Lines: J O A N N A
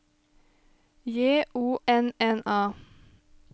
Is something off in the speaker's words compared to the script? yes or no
yes